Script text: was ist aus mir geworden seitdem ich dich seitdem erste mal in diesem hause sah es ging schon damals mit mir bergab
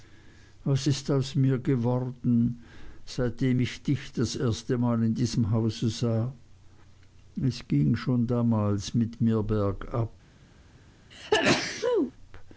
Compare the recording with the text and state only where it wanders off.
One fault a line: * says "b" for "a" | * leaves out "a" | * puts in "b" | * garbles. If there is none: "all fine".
* says "das" for "seitdem"